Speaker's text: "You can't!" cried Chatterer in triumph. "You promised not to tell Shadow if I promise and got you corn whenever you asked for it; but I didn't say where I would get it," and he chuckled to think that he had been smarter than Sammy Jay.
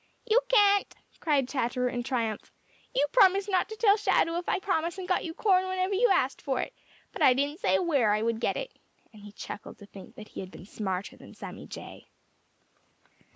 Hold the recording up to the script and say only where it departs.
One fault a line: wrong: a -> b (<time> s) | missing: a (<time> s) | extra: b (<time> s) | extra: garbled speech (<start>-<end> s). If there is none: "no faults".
no faults